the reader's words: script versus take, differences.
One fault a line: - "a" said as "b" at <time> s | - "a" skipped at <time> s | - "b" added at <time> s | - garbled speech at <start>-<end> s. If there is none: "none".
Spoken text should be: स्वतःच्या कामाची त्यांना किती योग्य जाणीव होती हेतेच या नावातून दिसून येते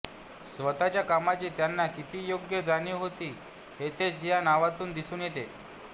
none